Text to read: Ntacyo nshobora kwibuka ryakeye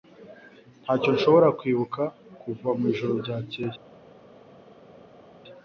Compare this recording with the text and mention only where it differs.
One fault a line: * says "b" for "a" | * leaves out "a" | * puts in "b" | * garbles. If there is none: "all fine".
* puts in "kuva mwijoro"